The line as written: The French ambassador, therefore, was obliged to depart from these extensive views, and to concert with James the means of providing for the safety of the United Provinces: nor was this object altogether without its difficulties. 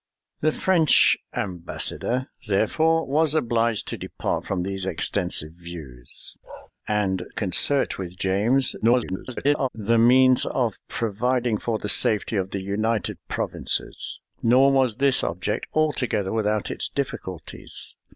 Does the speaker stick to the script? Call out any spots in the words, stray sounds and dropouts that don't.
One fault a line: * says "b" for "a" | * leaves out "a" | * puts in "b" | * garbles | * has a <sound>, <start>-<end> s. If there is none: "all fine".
* has a bark, 6.4-6.7 s
* leaves out "to"
* garbles